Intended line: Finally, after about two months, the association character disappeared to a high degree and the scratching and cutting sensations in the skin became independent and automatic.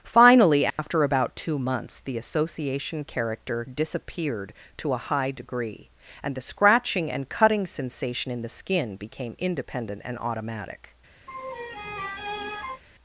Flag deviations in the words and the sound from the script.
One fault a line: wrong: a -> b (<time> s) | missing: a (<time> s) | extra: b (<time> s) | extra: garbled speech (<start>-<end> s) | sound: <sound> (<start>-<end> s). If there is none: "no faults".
sound: dropout (0.7-0.8 s)
wrong: sensations -> sensation (7.7 s)
sound: laugh (11.3-12.8 s)